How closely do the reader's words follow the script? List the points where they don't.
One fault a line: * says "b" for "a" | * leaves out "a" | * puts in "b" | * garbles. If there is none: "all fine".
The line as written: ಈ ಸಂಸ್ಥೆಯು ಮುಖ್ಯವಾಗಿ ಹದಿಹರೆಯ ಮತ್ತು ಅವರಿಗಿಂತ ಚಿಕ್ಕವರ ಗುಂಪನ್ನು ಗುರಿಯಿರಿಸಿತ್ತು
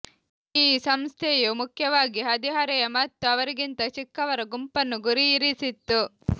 all fine